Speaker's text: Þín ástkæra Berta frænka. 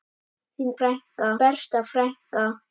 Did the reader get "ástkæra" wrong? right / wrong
wrong